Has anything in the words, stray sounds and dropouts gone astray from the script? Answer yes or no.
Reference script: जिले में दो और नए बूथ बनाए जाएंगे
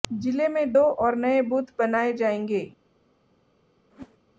yes